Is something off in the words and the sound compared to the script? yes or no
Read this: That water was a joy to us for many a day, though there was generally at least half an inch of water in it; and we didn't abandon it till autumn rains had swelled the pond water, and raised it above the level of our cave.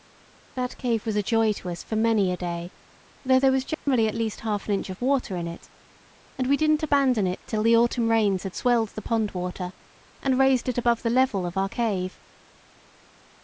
yes